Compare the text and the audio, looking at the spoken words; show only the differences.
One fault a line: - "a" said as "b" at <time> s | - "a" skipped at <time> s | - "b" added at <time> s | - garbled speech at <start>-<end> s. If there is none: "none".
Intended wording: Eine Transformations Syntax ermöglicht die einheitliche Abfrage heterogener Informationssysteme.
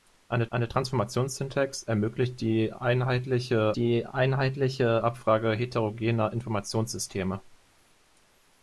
- "eine" added at 0.5 s
- "die einheitliche" added at 3.8 s